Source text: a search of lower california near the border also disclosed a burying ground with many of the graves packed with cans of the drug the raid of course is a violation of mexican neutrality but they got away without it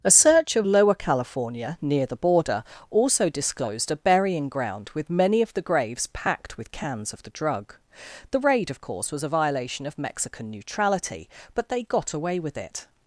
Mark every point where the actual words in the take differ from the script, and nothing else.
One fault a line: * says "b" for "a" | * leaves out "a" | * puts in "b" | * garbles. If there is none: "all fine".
* says "was" for "is"
* says "with" for "without"